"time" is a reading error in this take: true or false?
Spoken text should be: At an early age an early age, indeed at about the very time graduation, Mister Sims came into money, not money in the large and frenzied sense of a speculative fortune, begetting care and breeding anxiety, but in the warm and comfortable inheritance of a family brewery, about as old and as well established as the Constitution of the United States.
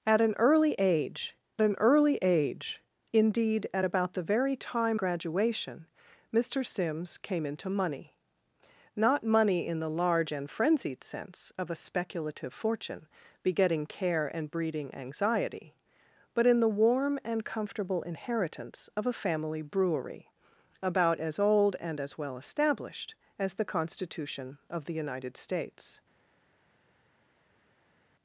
false